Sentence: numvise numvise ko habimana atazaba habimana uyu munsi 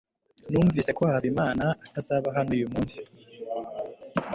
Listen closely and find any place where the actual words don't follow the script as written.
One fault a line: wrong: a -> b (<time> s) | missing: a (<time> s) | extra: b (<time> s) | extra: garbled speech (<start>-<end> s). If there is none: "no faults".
missing: numvise (0.9 s)
wrong: habimana -> hano (2.4 s)